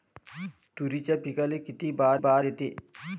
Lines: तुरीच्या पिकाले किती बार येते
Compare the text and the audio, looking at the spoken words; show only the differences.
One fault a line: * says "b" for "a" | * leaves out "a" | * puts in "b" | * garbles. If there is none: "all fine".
* puts in "बार"